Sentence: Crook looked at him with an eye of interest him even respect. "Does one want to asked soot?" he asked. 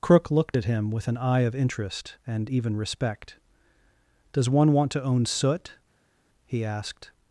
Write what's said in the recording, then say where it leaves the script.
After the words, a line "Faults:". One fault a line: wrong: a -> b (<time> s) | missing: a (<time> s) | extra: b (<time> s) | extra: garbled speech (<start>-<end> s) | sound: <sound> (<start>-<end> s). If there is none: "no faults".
Crook looked at him with an eye of interest and even respect. "Does one want to own soot?" he asked.
Faults:
wrong: him -> and (2.3 s)
wrong: asked -> own (5.0 s)